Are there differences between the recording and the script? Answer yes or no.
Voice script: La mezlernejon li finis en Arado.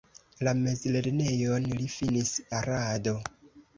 yes